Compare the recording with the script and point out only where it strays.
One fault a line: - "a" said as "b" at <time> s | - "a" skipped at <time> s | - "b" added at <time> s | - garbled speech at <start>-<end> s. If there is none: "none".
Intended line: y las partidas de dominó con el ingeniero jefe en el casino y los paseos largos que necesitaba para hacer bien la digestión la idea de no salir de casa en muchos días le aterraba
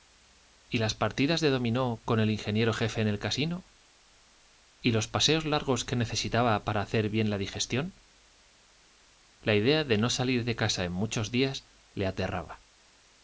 none